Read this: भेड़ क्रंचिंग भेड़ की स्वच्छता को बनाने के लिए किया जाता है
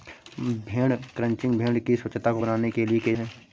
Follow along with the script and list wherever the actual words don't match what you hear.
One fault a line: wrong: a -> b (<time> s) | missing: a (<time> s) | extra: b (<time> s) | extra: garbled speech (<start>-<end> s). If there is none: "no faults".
missing: जाता (3.1 s)